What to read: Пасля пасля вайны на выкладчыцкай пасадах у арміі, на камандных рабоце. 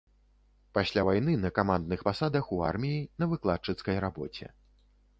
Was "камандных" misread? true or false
true